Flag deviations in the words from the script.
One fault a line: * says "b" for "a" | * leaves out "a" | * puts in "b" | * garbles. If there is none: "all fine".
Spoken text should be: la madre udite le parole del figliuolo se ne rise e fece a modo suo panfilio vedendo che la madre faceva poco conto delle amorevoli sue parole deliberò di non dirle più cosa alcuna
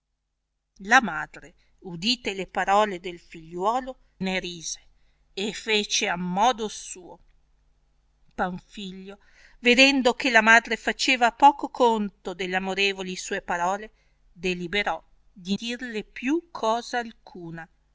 * leaves out "se"
* leaves out "non"